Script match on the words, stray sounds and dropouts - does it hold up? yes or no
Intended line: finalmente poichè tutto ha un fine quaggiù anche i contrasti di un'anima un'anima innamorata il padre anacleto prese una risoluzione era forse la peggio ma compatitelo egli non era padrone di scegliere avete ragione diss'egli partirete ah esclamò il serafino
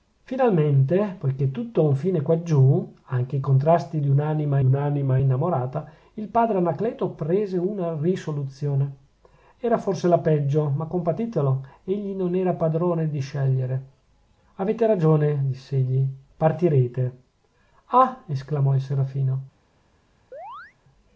no